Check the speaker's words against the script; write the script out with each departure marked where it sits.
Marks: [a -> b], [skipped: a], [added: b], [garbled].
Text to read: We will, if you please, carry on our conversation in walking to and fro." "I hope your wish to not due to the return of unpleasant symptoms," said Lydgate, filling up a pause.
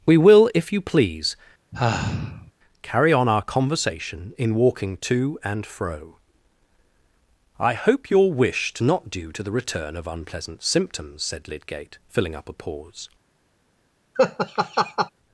We will, if you please, carry on our conversation in walking to and fro." "I hope your wish to not due to the return of unpleasant symptoms," said Lydgate, filling up a pause.